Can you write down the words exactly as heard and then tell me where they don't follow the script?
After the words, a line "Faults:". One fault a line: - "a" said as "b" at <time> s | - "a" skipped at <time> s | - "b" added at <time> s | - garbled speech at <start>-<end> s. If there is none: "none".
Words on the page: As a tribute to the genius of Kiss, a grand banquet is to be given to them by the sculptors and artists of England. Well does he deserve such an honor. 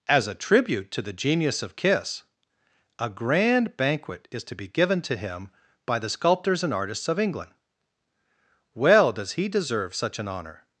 As a tribute to the genius of Kiss, a grand banquet is to be given to him by the sculptors and artists of England. Well does he deserve such an honor.
Faults:
- "them" said as "him" at 5.2 s